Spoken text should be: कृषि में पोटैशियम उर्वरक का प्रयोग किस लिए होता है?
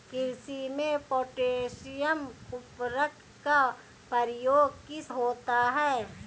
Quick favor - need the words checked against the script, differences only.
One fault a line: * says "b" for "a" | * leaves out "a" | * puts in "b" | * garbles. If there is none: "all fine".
* leaves out "लिए"